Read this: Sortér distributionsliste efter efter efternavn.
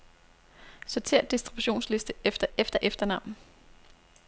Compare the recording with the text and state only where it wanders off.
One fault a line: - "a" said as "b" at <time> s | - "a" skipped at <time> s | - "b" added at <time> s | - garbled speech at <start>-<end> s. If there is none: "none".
none